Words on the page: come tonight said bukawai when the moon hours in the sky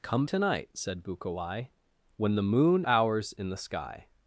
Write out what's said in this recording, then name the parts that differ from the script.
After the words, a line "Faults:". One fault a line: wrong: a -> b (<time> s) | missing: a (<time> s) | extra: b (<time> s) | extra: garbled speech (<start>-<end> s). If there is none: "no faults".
come tonight said bukawai when the moon hours in the sky
Faults:
no faults